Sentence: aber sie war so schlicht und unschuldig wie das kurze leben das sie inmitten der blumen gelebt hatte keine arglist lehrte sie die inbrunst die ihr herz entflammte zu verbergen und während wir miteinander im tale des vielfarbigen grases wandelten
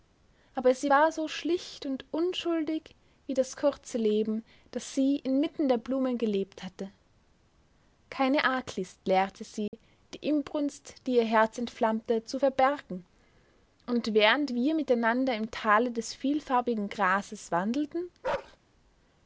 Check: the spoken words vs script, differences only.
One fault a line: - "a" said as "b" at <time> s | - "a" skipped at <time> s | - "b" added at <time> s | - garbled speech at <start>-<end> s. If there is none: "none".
none